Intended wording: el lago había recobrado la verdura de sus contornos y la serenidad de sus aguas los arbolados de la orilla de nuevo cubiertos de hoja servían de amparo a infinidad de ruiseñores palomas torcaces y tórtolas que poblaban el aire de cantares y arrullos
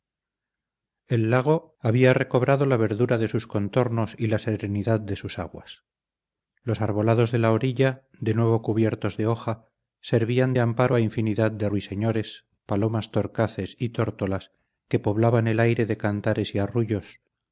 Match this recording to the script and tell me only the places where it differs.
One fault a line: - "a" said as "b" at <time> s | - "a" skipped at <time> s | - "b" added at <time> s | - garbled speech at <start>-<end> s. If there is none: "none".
none